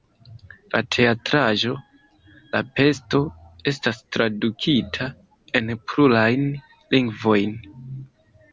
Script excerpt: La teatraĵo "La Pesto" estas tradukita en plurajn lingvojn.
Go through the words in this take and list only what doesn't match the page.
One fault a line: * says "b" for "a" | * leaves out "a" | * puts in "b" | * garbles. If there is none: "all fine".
all fine